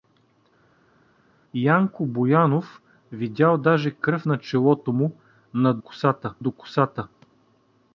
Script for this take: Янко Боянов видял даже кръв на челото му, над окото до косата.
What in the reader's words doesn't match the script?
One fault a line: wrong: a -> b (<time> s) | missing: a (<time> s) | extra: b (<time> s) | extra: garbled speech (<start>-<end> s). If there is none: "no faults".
wrong: окото -> косата (5.8 s)